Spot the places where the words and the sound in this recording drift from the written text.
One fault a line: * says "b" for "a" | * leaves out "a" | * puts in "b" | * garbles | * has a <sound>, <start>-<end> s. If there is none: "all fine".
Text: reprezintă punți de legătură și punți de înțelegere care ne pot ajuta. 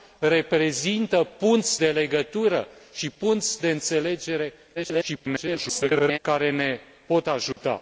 * garbles
* has a dropout, 7.5-7.6 s